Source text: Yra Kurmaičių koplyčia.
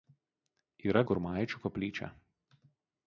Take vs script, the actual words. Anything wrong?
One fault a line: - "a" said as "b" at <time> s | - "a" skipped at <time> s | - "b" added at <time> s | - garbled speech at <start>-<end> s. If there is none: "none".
none